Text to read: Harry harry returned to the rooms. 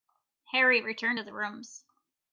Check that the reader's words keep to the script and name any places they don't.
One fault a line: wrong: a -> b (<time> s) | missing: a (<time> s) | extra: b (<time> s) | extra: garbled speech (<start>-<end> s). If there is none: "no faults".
missing: harry (0.8 s)